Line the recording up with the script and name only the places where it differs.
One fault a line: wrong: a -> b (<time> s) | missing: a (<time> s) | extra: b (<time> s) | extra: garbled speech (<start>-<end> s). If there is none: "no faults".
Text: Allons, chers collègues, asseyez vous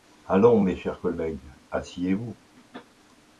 extra: mes (0.6 s)